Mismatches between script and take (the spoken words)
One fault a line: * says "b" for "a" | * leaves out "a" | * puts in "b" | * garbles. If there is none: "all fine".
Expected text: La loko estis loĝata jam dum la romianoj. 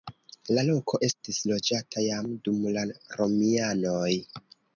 all fine